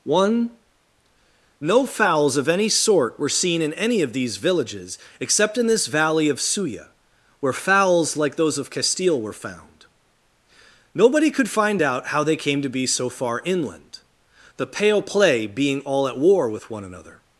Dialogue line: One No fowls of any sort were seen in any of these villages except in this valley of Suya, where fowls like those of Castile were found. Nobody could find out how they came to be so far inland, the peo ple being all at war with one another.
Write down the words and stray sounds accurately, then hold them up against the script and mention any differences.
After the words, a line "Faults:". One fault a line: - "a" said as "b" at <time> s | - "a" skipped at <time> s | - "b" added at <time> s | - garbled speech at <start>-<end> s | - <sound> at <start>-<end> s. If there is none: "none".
One No fowls of any sort were seen in any of these villages except in this valley of Suya, where fowls like those of Castile were found. Nobody could find out how they came to be so far inland, the pale play being all at war with one another.
Faults:
- "peo ple" said as "pale play" at 14.7 s